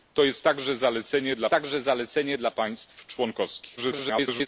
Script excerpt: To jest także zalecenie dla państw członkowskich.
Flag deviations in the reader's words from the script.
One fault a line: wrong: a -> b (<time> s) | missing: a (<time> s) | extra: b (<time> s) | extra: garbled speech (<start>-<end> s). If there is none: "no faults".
extra: także zalecenie dla (1.5 s)
extra: garbled speech (3.8-4.5 s)